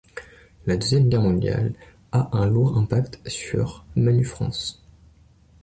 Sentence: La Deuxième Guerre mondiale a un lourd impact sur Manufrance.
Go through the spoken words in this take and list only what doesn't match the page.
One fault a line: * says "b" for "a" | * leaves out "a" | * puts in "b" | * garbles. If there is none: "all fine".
all fine